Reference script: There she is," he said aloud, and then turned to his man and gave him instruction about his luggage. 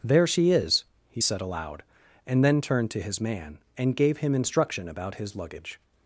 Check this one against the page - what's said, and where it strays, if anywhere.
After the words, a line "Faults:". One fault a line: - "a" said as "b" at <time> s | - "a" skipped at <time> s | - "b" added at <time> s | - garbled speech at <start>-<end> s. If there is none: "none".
There she is," he said aloud, and then turned to his man and gave him instruction about his luggage.
Faults:
none